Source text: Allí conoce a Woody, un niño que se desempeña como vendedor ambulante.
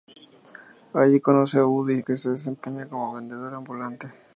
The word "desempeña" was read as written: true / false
true